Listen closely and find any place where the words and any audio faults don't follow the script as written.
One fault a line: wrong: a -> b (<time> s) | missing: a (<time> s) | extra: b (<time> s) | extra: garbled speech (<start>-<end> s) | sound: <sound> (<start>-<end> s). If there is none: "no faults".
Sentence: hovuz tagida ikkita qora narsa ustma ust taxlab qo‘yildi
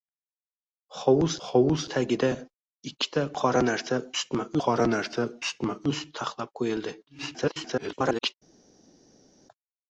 extra: hovuz (1.5 s)
extra: qora narsa ustma (4.7 s)
extra: garbled speech (7.1-8.3 s)